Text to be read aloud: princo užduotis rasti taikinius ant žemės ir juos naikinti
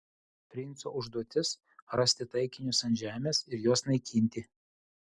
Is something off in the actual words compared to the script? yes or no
no